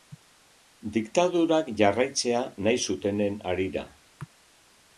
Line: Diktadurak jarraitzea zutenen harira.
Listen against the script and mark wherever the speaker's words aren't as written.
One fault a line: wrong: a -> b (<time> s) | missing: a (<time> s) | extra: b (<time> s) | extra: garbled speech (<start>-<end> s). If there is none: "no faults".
extra: nahi (2.7 s)